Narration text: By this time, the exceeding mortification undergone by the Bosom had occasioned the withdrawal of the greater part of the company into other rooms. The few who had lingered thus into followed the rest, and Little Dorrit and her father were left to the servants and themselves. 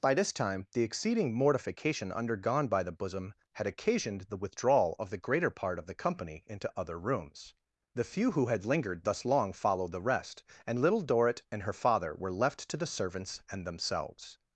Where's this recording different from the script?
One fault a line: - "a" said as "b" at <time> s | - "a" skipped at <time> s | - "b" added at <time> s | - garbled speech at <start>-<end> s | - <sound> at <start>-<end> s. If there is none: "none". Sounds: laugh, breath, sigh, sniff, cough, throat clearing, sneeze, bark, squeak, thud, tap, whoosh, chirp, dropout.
- "into" said as "long" at 9.2 s